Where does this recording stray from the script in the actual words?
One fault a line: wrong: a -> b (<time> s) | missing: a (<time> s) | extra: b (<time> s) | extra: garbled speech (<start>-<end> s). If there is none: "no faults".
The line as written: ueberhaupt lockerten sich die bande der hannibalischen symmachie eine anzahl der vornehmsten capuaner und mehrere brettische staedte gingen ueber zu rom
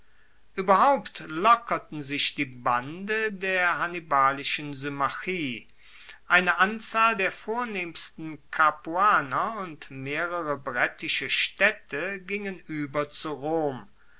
no faults